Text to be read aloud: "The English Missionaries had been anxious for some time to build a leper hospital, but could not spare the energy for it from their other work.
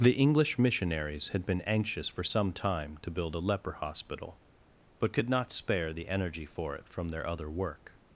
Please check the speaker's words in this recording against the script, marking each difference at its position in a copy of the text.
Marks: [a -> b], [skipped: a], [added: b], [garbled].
"The English Missionaries had been anxious for some time to build a leper hospital, but could not spare the energy for it from their other work.